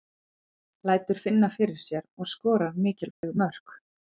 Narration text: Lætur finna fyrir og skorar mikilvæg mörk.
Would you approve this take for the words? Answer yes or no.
no